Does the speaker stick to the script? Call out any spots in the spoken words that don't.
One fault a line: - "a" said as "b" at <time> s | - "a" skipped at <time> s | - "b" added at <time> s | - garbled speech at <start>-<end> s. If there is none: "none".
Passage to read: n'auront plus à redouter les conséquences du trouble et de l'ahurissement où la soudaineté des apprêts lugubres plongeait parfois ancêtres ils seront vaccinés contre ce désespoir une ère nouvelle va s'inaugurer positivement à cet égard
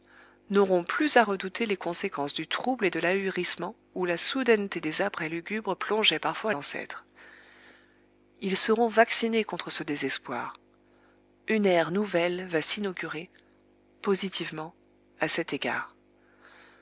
none